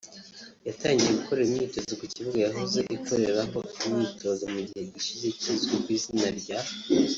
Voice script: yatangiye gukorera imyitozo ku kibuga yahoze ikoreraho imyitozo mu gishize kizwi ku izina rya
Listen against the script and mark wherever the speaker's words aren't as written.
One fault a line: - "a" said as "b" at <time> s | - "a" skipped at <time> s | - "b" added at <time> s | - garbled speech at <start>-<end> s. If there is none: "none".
- "gihe" added at 4.7 s